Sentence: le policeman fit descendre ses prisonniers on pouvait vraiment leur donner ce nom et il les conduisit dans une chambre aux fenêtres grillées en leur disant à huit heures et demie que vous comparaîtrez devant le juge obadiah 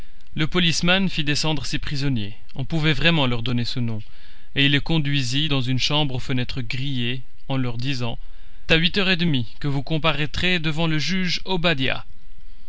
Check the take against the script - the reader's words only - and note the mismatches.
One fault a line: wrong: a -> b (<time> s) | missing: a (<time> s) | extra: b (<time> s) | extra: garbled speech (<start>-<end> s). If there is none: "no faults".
no faults